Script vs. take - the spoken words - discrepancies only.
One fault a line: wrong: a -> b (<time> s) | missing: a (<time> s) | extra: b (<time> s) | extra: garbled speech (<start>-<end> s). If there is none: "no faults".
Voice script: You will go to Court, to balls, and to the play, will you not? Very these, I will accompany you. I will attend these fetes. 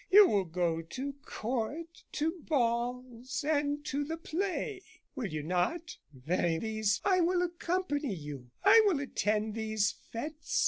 no faults